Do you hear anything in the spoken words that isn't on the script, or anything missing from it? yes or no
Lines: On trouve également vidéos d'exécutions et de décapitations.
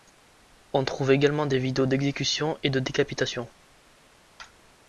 yes